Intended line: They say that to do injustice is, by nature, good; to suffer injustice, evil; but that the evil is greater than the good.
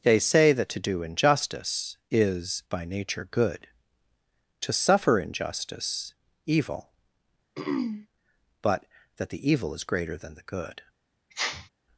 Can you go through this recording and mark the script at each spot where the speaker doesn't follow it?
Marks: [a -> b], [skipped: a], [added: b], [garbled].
They say that to do injustice is, by nature, good; to suffer injustice, evil; but that the evil is greater than the good.